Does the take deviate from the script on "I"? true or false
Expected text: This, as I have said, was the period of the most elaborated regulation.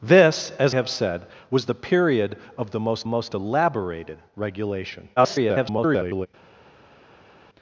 true